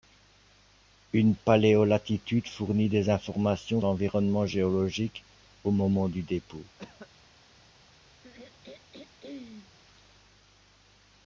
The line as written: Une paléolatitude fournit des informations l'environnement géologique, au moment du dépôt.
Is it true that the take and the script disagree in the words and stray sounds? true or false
true